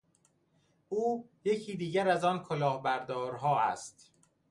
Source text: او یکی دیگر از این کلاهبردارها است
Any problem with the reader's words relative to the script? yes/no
yes